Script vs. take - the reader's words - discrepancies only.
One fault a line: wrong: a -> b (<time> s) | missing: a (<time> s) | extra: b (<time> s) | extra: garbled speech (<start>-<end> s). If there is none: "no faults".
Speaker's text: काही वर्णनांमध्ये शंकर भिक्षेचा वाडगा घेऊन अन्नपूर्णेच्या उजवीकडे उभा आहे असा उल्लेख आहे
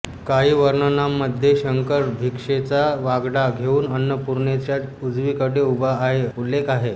missing: असा (6.2 s)